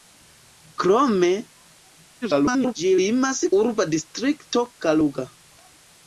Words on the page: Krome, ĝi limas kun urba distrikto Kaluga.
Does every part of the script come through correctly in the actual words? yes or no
no